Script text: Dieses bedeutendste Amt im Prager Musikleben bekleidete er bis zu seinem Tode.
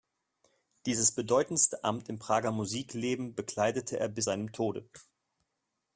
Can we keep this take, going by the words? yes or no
no